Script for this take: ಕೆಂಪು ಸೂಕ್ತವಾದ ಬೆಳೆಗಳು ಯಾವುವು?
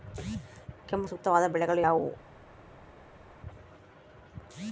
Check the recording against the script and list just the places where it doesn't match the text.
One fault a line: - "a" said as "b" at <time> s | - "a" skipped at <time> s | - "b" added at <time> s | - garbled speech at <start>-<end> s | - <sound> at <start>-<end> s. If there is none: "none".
none